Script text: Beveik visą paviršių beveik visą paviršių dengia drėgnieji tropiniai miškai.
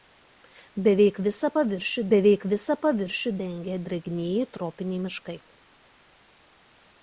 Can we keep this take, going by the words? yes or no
yes